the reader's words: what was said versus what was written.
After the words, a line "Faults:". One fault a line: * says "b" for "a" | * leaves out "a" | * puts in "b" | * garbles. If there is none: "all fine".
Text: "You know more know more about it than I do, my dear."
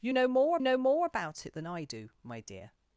"You know more know more about it than I do, my dear."
Faults:
all fine